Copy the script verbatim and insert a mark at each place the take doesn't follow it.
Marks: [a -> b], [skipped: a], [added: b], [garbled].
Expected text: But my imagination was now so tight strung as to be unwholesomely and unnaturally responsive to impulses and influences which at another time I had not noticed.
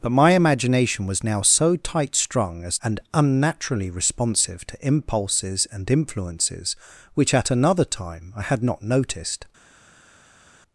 But my imagination was now so tight strung as [skipped: to be unwholesomely] and unnaturally responsive to impulses and influences which at another time I had not noticed.